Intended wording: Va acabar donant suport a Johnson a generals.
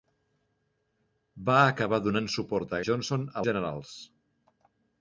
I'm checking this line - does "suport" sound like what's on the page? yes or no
yes